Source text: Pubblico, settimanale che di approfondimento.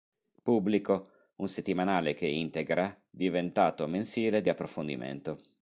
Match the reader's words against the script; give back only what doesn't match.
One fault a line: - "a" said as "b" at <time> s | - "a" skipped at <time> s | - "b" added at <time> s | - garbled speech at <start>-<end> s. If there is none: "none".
- "un" added at 1.4 s
- "integra diventato mensile" added at 2.2 s